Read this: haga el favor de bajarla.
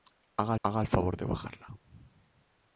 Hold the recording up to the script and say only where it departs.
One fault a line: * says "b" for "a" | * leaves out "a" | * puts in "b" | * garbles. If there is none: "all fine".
* puts in "haga"